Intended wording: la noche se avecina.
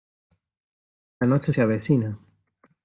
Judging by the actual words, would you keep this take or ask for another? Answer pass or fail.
pass